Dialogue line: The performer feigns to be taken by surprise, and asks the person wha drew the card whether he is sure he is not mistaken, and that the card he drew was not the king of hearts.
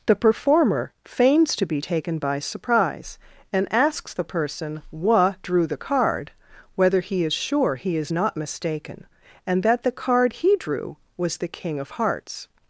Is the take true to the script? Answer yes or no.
no